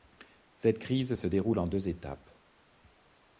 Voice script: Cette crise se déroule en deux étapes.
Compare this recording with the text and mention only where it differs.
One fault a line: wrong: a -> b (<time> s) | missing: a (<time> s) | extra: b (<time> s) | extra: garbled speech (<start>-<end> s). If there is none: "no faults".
no faults